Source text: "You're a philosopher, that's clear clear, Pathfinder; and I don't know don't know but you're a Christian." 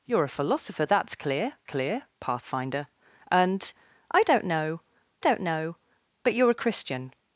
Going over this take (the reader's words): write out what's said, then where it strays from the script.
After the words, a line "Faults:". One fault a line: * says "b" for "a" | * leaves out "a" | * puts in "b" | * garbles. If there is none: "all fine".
"You're a philosopher, that's clear clear, Pathfinder; and I don't know don't know but you're a Christian."
Faults:
all fine